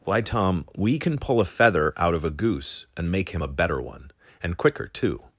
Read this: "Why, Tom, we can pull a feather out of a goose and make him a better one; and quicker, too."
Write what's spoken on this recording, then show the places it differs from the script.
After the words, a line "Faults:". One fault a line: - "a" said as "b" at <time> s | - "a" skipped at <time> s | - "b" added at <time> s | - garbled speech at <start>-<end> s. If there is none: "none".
"Why, Tom, we can pull a feather out of a goose and make him a better one; and quicker, too."
Faults:
none